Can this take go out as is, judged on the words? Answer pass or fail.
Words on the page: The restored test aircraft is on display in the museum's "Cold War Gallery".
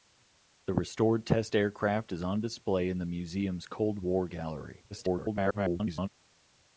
fail